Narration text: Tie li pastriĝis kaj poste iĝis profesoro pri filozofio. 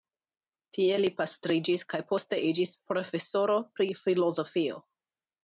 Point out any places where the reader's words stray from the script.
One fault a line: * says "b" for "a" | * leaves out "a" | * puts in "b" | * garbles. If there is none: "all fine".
all fine